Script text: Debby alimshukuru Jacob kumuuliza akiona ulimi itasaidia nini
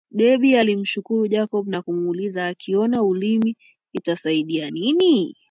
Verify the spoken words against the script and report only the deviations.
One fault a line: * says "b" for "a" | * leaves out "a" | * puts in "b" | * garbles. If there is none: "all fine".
* puts in "na"